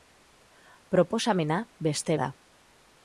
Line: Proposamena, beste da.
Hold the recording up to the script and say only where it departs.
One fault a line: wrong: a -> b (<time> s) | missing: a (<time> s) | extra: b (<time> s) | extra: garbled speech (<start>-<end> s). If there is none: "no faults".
no faults